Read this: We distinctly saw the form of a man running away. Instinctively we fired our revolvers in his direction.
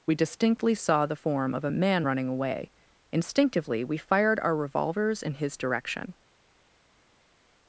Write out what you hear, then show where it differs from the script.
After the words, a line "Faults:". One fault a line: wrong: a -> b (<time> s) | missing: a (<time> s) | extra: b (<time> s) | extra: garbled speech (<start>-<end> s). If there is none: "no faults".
We distinctly saw the form of a man running away. Instinctively we fired our revolvers in his direction.
Faults:
no faults